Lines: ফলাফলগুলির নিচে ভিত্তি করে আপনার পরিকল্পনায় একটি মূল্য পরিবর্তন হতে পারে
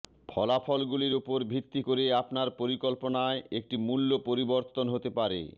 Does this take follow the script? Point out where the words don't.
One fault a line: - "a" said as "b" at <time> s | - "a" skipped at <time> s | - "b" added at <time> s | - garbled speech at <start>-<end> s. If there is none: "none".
- "নিচে" said as "উপর" at 1.1 s